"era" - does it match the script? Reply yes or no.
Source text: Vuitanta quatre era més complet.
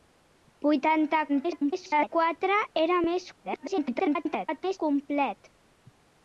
yes